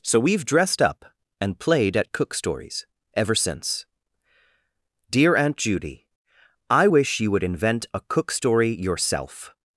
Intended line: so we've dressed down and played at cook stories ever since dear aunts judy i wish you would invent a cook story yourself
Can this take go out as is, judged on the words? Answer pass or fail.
fail